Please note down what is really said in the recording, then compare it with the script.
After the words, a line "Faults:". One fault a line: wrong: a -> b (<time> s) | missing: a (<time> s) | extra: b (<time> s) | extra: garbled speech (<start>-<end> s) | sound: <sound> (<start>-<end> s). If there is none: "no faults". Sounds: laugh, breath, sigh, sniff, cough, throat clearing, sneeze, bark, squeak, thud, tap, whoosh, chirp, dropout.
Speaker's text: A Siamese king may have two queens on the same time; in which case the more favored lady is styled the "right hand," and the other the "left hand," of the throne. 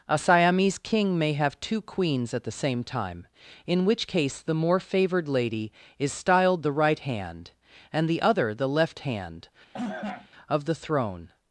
A Siamese king may have two queens at the same time; in which case the more favored lady is styled the "right hand," and the other the "left hand," of the throne.
Faults:
wrong: on -> at (2.3 s)
sound: cough (9.7-10.3 s)